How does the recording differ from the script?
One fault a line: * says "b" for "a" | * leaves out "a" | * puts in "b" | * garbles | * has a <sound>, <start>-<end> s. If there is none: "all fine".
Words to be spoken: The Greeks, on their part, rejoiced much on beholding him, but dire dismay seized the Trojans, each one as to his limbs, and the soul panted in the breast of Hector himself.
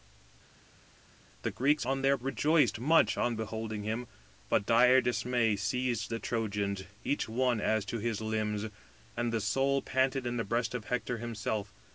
* leaves out "part"